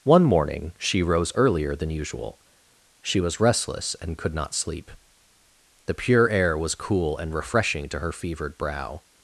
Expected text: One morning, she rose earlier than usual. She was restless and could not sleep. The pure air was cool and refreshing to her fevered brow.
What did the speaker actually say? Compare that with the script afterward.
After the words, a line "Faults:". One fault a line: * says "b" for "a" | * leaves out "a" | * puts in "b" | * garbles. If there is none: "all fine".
One morning, she rose earlier than usual. She was restless and could not sleep. The pure air was cool and refreshing to her fevered brow.
Faults:
all fine